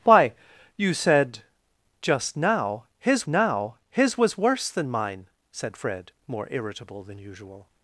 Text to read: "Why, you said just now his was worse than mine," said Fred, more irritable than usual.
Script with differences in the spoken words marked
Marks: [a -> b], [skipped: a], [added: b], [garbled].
"Why, you said just now his [added: now his] was worse than mine," said Fred, more irritable than usual.